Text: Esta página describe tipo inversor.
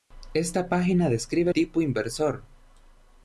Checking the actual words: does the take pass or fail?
pass